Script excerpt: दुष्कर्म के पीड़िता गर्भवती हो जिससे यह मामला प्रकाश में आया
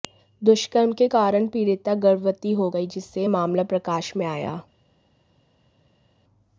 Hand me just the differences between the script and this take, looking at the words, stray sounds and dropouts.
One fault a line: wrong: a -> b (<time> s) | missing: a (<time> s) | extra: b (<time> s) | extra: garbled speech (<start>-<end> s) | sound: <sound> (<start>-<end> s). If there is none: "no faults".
extra: कारण (1.1 s)
extra: गई (2.7 s)